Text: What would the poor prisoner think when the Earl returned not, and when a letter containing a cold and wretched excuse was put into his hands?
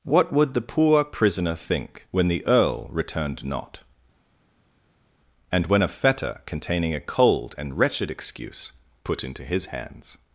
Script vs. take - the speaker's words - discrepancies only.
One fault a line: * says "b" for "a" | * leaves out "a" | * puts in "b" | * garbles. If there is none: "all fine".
* says "fetter" for "letter"
* leaves out "was"